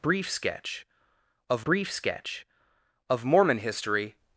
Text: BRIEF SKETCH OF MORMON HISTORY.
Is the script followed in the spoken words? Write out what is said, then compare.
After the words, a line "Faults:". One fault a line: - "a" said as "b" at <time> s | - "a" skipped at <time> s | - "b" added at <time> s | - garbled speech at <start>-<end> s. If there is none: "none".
BRIEF SKETCH OF brief SKETCH OF MORMON HISTORY.
Faults:
- "brief SKETCH OF" added at 1.6 s